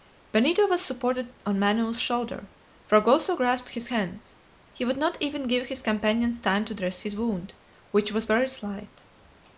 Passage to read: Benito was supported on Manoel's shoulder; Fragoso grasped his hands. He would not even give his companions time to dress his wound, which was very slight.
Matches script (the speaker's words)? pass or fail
pass